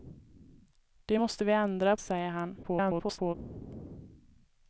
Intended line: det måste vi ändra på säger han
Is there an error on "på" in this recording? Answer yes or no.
yes